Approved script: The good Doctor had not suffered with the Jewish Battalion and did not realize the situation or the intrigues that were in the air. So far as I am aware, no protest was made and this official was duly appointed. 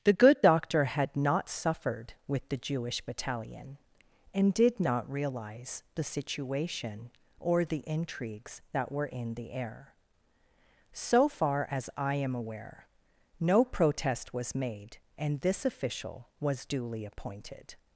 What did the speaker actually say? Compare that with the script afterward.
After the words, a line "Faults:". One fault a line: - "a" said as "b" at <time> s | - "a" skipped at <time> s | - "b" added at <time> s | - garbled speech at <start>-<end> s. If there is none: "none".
The good Doctor had not suffered with the Jewish Battalion and did not realize the situation or the intrigues that were in the air. So far as I am aware, no protest was made and this official was duly appointed.
Faults:
none